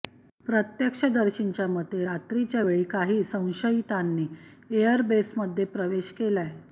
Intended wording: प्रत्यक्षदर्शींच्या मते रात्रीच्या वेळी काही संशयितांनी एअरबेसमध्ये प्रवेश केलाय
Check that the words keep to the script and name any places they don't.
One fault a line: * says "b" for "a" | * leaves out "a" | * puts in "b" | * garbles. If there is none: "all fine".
all fine